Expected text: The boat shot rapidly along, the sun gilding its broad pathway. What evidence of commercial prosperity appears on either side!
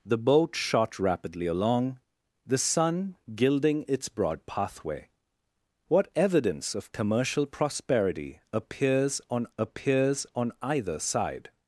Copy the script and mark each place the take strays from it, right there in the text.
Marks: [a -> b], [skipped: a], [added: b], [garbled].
The boat shot rapidly along, the sun gilding its broad pathway. What evidence of commercial prosperity appears on [added: appears on] either side!